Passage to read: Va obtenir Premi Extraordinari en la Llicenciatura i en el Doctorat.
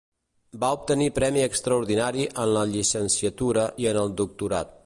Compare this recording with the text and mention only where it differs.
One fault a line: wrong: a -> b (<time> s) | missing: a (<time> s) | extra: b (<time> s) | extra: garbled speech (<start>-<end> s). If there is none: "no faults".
no faults